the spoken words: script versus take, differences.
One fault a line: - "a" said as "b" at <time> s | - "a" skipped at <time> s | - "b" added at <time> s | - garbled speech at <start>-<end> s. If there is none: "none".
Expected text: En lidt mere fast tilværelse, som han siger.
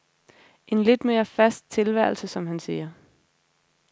none